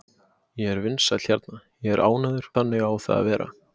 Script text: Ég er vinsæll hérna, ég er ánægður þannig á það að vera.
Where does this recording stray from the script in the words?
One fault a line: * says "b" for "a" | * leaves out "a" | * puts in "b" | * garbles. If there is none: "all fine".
all fine